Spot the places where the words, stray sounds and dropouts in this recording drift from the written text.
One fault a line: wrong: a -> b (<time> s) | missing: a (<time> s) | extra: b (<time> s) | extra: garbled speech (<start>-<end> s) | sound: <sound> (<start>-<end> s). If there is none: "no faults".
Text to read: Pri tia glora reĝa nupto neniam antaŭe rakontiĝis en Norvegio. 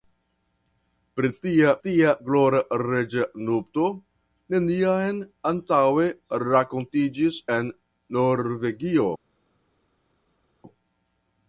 extra: tia (1.8 s)